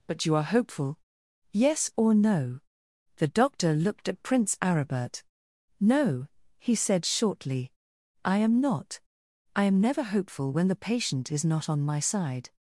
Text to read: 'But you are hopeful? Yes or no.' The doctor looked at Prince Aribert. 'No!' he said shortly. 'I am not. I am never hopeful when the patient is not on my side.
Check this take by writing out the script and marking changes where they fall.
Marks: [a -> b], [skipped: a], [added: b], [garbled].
'But you are hopeful? Yes or no.' The doctor looked at Prince Aribert. 'No!' he said shortly. 'I am not. I am never hopeful when the patient is not on my side.